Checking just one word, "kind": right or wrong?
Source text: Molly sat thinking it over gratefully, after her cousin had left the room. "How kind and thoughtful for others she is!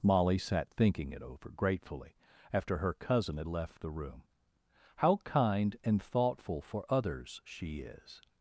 right